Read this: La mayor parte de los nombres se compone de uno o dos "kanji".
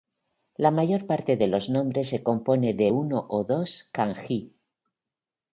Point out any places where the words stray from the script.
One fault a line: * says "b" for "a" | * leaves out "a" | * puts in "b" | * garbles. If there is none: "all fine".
all fine